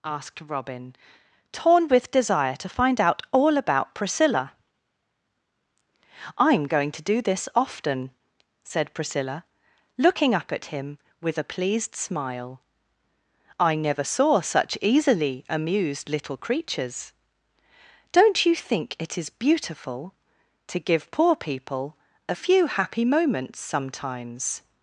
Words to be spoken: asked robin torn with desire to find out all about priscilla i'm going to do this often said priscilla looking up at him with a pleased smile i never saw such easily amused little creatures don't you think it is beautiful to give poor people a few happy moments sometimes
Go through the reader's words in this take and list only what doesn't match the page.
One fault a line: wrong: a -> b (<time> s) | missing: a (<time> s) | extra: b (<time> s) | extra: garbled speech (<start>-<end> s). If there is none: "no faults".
no faults